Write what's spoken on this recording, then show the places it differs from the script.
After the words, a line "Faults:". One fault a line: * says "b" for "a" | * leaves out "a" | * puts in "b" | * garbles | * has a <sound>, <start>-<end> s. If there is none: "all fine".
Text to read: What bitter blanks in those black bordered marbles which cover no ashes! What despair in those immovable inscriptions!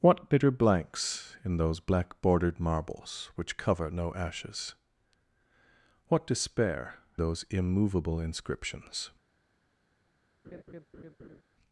What bitter blanks in those black bordered marbles which cover no ashes! What despair those immovable inscriptions!
Faults:
* leaves out "in"
* has a laugh, 10.4-11.4 s